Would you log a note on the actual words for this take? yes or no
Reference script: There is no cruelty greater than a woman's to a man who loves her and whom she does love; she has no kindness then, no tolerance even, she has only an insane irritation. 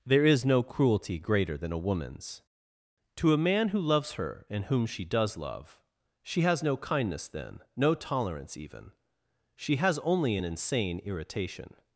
no